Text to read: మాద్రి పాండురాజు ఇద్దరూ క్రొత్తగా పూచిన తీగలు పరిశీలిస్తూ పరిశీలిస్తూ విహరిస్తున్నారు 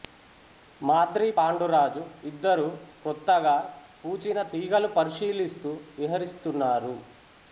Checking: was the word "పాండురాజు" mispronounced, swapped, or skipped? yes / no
no